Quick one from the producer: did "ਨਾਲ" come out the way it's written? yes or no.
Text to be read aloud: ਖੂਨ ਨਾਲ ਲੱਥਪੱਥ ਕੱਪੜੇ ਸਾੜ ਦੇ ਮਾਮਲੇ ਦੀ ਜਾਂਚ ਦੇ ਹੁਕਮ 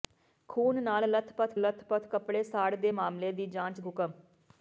yes